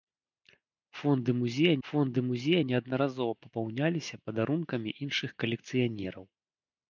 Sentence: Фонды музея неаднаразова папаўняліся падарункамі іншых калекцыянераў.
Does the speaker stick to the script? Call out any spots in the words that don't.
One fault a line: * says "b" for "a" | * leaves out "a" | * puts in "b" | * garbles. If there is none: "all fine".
* puts in "фонды музея"